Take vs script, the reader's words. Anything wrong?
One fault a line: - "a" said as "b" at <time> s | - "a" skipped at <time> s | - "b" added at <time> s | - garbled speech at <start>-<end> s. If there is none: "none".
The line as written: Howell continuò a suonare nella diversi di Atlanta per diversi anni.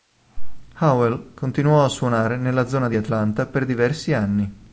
- "diversi" said as "zona" at 2.6 s